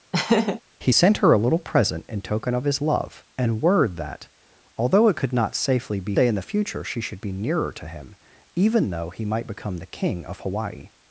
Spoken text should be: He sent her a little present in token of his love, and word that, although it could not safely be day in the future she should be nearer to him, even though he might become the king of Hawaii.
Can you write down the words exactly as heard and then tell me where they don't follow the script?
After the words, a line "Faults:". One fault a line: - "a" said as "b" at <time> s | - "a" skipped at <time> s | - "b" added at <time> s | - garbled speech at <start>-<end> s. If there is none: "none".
He sent her a little present in token of his love, and word that, although it could not safely be day in the future she should be nearer to him, even though he might become the king of Hawaii.
Faults:
none